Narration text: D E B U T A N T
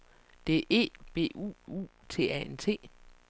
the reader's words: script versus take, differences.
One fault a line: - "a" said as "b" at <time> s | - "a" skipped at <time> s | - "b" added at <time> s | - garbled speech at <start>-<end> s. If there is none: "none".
- "U" added at 1.7 s